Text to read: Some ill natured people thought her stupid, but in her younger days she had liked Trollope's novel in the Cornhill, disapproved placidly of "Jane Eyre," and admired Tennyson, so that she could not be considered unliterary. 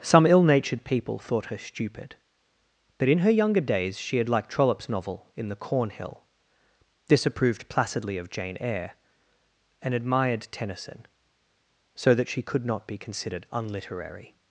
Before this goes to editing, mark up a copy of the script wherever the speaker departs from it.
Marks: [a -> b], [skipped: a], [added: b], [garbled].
Some ill natured people thought her stupid, but in her younger days she had liked Trollope's novel in the Cornhill, disapproved placidly of "Jane Eyre," and admired Tennyson, so that she could not be considered unliterary.